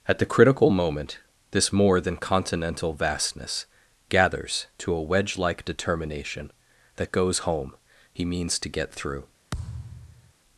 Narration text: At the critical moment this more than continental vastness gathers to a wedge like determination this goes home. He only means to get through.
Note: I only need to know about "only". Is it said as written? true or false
false